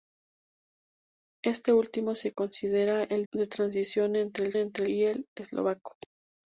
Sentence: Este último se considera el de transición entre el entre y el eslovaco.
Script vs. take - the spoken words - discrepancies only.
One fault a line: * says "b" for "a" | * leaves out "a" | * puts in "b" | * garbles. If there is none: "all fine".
all fine